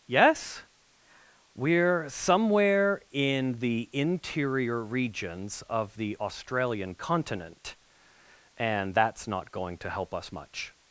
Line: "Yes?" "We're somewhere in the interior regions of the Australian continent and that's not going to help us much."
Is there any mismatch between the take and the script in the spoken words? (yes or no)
no